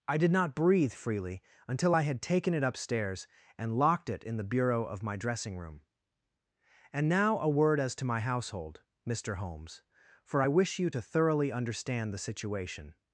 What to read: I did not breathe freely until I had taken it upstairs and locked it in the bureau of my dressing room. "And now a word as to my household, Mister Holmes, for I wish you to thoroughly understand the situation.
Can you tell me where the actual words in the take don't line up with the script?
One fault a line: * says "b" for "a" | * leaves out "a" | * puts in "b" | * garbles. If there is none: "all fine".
all fine